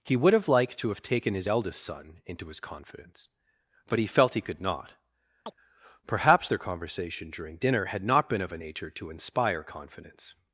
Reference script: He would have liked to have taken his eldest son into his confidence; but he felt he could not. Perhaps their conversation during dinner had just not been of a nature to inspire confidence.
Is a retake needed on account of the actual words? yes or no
yes